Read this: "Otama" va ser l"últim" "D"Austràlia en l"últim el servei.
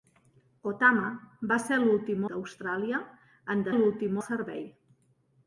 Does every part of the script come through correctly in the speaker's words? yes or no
yes